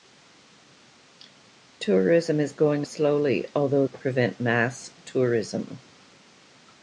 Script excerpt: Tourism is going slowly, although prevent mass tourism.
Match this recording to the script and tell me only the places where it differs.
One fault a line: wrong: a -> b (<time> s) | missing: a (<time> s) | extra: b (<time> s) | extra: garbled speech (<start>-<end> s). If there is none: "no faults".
no faults